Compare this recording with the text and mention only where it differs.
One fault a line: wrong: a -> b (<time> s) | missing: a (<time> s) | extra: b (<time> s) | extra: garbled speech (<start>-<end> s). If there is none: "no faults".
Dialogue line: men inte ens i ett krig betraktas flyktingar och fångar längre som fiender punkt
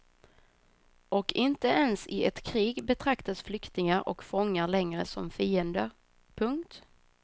wrong: men -> och (1.1 s)